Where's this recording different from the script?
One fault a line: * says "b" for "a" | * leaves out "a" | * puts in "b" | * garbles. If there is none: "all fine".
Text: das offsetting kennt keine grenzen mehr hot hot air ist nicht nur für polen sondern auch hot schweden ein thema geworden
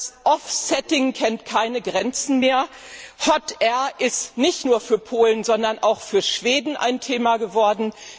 * leaves out "hot"
* says "für" for "hot"